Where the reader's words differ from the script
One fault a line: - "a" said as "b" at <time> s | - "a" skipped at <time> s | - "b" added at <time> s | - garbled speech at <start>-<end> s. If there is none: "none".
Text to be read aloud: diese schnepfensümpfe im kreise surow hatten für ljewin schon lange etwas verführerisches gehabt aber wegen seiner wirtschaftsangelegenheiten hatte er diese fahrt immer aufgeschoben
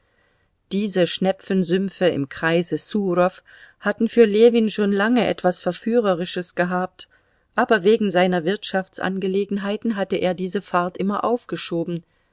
none